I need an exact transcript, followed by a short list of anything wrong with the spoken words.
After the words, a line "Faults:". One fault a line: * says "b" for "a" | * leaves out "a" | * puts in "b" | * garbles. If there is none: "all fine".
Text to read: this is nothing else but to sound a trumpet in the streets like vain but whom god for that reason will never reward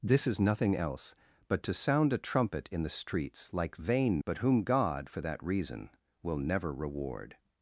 this is nothing else but to sound a trumpet in the streets like vain but whom god for that reason will never reward
Faults:
all fine